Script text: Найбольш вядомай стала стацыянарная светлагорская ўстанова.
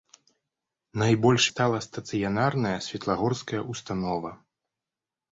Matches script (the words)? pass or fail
fail